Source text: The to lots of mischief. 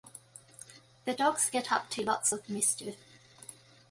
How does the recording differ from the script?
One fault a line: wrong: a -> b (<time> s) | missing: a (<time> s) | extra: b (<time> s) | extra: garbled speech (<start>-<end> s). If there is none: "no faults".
extra: dogs get up (1.1 s)